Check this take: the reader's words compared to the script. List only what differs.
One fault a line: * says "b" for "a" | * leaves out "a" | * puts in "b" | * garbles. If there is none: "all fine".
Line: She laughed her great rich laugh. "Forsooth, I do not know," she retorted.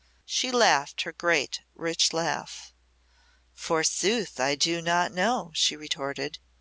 all fine